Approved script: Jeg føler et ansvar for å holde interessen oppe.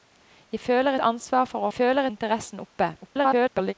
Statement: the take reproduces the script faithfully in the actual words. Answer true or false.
false